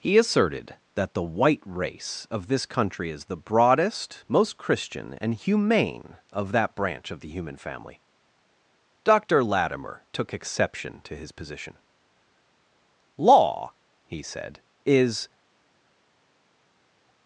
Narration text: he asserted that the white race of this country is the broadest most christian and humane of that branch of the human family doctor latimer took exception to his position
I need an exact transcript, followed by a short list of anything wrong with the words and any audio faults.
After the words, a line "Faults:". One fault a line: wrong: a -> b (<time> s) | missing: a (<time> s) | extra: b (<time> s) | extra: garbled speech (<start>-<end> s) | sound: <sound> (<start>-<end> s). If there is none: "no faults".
he asserted that the white race of this country is the broadest most christian and humane of that branch of the human family doctor latimer took exception to his position law he said is
Faults:
extra: law he said is (13.2 s)